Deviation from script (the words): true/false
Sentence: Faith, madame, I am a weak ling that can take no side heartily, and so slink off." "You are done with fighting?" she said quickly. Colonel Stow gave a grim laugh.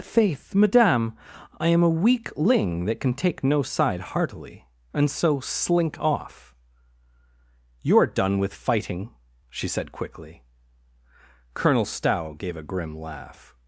false